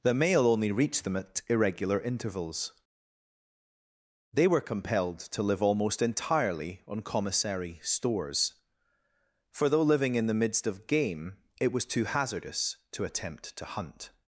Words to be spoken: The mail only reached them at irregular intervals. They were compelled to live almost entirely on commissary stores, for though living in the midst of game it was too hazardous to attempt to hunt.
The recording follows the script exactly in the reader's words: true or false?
true